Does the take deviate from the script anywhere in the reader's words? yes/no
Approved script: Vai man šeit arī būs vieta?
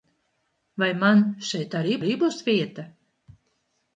yes